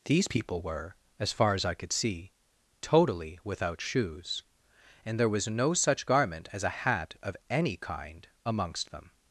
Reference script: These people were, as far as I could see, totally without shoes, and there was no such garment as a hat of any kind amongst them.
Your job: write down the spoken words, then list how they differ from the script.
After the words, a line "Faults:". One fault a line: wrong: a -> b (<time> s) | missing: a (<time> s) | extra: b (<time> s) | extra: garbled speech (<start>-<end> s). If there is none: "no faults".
These people were, as far as I could see, totally without shoes, and there was no such garment as a hat of any kind amongst them.
Faults:
no faults